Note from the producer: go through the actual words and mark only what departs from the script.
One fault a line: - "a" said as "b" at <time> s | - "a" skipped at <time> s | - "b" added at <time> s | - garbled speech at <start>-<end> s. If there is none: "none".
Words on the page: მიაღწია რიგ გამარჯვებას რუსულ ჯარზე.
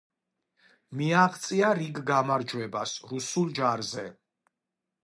none